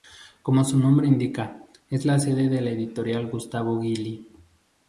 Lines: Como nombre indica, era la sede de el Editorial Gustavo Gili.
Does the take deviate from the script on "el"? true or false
true